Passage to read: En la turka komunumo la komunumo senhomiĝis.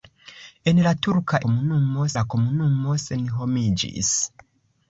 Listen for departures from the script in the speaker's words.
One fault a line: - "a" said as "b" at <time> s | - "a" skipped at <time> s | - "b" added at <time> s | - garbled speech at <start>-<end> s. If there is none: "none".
none